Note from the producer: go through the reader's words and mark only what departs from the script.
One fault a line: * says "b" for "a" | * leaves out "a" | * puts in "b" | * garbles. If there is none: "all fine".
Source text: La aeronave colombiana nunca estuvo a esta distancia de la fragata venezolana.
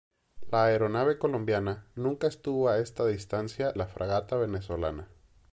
* leaves out "de"